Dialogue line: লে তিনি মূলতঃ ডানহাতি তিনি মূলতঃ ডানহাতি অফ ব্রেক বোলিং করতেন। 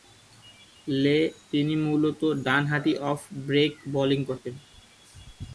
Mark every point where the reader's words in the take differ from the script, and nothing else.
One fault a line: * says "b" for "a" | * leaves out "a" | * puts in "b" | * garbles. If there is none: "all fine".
* leaves out "তিনি মূলতঃ ডানহাতি"